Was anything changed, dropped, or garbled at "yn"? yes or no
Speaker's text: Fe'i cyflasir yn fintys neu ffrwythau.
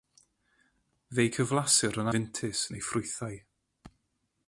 no